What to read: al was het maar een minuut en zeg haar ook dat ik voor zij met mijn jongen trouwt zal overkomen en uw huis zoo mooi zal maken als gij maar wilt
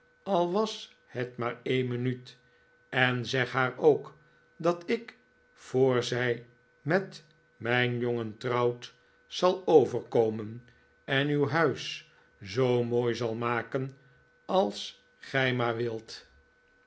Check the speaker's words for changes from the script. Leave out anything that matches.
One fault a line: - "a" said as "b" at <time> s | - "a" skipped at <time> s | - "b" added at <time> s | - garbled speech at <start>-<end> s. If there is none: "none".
none